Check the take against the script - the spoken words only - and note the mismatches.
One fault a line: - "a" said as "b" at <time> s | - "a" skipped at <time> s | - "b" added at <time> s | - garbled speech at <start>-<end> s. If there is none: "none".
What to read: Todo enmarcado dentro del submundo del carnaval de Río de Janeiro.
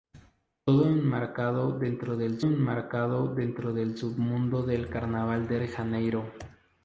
- "enmarcado dentro del" added at 2.4 s
- "Río" skipped at 5.6 s